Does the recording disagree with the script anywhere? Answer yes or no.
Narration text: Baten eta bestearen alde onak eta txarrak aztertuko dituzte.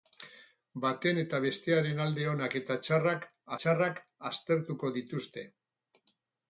yes